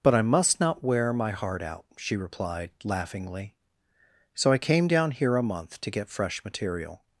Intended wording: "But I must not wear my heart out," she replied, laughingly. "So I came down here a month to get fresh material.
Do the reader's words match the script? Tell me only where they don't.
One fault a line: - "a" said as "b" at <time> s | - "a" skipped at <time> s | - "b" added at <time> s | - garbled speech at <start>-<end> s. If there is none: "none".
none